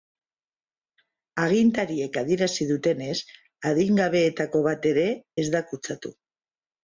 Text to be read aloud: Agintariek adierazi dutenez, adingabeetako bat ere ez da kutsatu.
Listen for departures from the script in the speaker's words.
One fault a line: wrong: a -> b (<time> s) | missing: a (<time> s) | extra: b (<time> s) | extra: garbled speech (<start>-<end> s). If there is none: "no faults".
no faults